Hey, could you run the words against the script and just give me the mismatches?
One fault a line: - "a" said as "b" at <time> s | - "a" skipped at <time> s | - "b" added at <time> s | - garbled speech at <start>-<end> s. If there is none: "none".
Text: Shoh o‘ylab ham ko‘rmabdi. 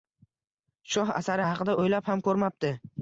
- "asari haqida" added at 1.2 s